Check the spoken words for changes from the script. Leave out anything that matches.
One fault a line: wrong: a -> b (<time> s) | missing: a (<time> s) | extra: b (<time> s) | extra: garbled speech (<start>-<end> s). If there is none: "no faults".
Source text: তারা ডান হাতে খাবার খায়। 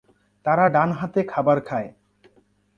no faults